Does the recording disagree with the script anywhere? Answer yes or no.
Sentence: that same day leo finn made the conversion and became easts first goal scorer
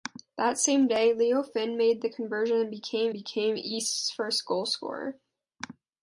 yes